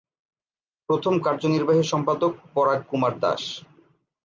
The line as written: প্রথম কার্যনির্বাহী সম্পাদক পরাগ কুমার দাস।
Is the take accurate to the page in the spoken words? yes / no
yes